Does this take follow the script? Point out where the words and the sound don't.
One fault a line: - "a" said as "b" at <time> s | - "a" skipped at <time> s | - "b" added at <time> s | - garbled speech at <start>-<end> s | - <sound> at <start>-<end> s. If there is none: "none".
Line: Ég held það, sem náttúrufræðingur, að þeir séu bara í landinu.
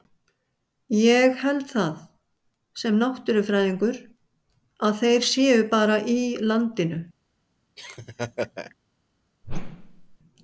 - laugh at 7.8-8.7 s
- whoosh at 9.4-10.2 s